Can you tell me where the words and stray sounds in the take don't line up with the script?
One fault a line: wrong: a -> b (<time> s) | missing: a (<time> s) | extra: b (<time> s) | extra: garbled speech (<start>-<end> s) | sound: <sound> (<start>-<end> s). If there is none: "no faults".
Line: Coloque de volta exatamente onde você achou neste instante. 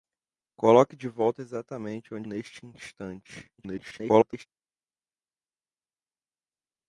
missing: você achou (2.3 s)
extra: garbled speech (3.6-4.5 s)